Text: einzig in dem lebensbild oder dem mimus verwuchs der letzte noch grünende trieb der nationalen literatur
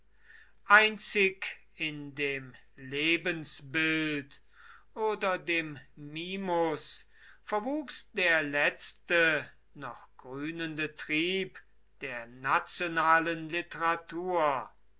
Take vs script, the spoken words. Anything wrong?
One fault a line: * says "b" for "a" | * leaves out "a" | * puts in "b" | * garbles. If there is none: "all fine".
all fine